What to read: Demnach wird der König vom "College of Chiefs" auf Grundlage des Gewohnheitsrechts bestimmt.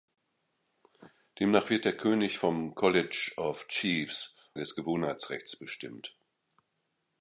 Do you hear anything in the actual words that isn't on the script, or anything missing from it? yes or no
yes